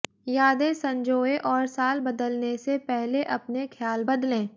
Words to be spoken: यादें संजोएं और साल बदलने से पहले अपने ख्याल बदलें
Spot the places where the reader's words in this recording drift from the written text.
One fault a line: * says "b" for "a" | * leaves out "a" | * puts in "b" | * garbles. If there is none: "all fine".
all fine